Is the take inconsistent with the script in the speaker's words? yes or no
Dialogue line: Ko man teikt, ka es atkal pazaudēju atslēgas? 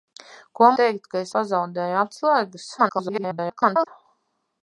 yes